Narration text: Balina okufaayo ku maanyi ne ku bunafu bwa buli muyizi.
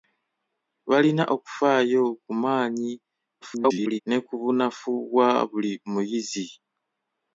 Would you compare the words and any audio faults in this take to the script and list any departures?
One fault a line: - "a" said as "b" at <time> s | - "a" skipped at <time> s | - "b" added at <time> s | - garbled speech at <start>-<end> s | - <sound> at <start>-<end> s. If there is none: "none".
- garbled speech at 3.4-4.0 s